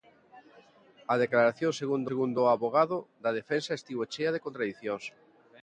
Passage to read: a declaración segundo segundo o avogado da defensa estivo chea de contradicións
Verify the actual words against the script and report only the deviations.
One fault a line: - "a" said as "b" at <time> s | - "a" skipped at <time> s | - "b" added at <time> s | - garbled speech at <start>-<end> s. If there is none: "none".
none